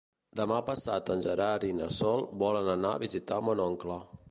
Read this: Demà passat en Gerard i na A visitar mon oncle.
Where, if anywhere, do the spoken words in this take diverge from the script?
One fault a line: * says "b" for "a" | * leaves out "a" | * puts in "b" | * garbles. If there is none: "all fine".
* puts in "Sol volen anar"